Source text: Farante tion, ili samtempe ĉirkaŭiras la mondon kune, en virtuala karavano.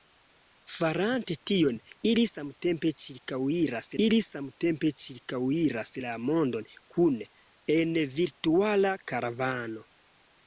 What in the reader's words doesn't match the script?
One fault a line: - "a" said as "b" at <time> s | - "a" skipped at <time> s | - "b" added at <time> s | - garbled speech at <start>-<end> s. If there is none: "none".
- "ili samtempe ĉirkaŭiras" added at 4.1 s